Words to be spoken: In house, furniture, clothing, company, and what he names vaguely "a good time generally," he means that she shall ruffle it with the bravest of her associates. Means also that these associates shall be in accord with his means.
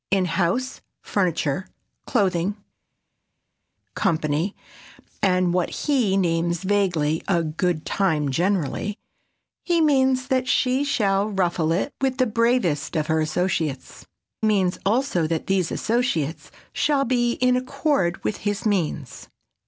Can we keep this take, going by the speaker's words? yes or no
yes